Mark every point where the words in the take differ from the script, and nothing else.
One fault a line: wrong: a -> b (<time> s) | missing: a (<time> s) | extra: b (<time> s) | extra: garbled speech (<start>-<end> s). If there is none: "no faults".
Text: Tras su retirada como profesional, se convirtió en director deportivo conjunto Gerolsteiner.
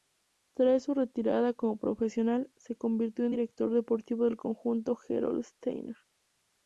extra: del (4.2 s)